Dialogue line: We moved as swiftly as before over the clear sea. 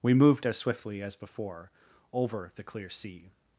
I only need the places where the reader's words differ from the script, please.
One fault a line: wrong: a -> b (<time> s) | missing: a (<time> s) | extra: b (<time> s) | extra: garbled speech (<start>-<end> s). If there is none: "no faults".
no faults